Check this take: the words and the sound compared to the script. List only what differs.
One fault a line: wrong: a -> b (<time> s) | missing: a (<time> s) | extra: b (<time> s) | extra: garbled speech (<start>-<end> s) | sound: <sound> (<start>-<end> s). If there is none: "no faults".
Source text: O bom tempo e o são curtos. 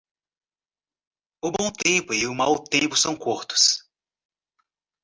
extra: mau tempo (2.3 s)